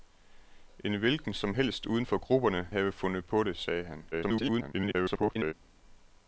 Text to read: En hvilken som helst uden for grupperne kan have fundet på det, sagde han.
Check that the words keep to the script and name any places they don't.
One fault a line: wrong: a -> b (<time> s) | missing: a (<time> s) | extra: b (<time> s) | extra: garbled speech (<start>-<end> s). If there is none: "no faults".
missing: kan (2.7 s)
extra: garbled speech (4.1-5.5 s)